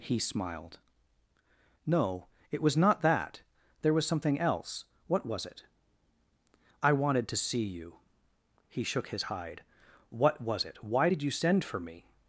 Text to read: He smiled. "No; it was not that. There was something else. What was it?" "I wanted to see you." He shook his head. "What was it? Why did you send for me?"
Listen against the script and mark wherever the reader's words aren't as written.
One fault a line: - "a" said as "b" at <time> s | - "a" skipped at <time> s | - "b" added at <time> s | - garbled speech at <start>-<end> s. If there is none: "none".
- "head" said as "hide" at 9.2 s